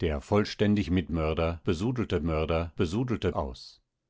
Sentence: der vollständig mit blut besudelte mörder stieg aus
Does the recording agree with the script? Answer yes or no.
no